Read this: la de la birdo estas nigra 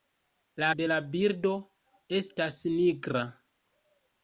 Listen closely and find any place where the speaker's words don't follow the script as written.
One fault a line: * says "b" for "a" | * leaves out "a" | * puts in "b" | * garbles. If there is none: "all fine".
all fine